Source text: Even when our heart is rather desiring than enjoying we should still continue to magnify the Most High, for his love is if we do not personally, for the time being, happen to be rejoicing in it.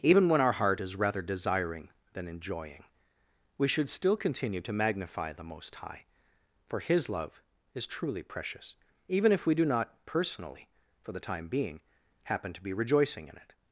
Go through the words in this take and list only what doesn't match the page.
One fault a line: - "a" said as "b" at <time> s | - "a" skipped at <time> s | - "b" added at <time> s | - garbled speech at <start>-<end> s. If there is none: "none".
- "truly precious even" added at 7.8 s